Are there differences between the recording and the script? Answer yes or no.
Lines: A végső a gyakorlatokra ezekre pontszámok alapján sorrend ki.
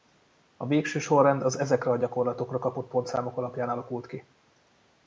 yes